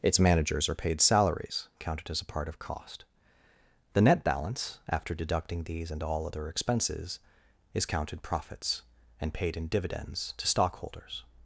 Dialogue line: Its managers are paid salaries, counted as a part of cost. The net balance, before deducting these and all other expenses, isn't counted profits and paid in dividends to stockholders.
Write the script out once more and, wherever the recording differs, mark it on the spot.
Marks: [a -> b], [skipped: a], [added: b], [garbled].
Its managers are paid salaries, counted as a part of cost. The net balance, [before -> after] deducting these and all other expenses, [isn't -> is] counted profits and paid in dividends to stockholders.